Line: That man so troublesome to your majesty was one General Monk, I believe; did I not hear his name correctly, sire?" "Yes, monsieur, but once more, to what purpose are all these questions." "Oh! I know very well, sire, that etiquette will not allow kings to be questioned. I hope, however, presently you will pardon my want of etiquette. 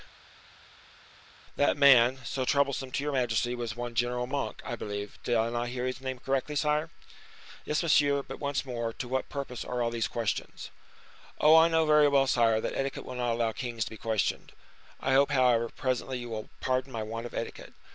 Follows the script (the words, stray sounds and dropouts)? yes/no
yes